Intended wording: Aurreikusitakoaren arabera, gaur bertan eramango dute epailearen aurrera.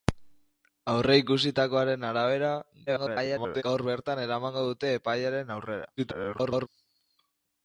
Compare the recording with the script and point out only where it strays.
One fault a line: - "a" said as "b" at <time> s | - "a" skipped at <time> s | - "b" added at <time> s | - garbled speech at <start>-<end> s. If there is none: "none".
- garbled speech at 2.9-3.6 s
- garbled speech at 6.0-6.7 s